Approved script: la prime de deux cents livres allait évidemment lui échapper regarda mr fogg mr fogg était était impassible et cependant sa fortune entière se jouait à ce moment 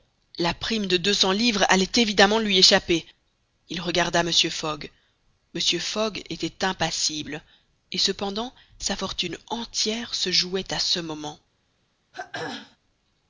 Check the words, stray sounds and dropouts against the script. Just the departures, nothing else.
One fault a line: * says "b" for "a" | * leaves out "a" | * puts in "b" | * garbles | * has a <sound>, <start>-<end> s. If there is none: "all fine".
* puts in "il"
* leaves out "était"
* has a throat clearing, 12.1-12.8 s